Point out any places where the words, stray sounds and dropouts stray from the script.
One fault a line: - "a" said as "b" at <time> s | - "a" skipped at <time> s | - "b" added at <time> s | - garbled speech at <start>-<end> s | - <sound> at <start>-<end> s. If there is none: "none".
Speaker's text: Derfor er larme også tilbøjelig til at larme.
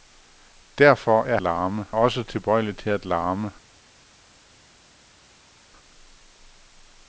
none